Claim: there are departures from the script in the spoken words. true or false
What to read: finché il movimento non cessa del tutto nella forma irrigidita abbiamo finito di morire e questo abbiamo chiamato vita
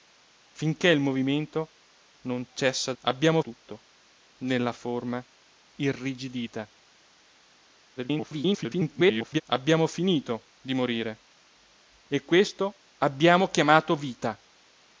true